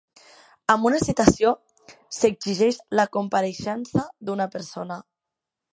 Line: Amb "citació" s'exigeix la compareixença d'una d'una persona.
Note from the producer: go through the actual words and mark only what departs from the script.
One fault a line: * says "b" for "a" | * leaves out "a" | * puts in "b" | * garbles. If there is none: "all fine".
* puts in "una"
* leaves out "d'una"